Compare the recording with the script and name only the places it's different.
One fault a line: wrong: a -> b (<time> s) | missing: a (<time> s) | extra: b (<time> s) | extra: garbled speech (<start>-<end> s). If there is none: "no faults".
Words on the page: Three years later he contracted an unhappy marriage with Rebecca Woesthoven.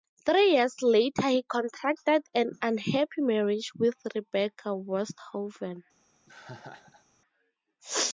no faults